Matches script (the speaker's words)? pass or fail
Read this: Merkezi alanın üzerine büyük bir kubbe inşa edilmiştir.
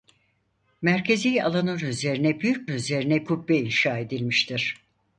fail